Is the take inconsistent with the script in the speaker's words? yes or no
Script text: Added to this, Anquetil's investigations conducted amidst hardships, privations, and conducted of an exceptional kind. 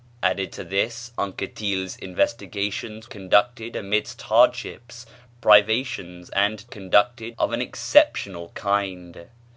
no